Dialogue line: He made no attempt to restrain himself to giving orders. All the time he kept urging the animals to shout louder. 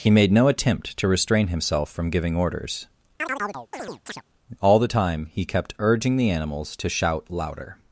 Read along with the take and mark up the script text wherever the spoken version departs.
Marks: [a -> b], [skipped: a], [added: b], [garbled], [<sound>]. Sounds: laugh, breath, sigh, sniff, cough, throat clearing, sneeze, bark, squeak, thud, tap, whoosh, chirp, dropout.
He made no attempt to restrain himself [to -> from] giving orders. [chirp] All the time he kept urging the animals to shout louder.